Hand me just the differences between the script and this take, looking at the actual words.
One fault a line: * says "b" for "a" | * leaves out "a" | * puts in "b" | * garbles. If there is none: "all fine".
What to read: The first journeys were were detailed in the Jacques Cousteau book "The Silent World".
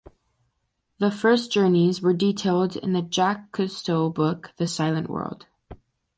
* leaves out "were"